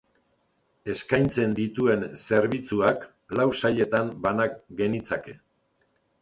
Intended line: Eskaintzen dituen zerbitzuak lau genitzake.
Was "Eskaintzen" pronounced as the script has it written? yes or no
yes